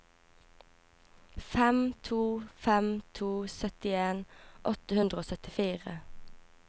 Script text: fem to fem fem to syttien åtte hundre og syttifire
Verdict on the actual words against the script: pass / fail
fail